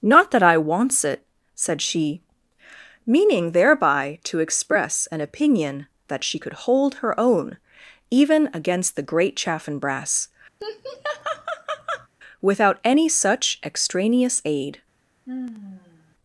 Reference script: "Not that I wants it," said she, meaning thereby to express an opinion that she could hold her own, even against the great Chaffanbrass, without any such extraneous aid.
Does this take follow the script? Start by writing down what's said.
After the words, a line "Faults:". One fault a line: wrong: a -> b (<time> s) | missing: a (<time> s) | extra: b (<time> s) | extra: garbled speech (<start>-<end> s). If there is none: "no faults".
"Not that I wants it," said she, meaning thereby to express an opinion that she could hold her own, even against the great Chaffanbrass, without any such extraneous aid.
Faults:
no faults